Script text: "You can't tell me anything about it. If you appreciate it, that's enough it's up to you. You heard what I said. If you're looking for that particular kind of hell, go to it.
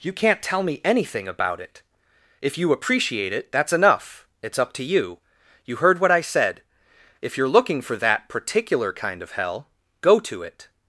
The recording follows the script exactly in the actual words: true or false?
true